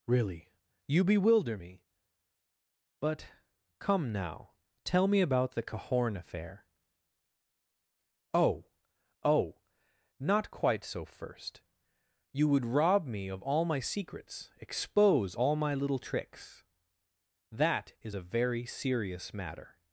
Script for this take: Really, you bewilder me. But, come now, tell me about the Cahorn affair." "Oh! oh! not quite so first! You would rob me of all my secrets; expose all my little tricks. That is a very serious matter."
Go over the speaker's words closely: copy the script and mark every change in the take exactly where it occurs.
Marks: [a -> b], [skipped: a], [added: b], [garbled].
Really, you bewilder me. But, come now, tell me about the Cahorn affair." "Oh! oh! not quite so first! You would rob me of all my secrets; expose all my little tricks. That is a very serious matter."